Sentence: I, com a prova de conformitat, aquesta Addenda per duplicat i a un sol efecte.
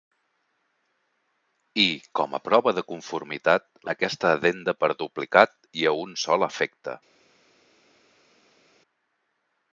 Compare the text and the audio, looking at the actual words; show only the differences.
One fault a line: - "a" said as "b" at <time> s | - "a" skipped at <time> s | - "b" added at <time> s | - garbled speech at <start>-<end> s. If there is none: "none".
none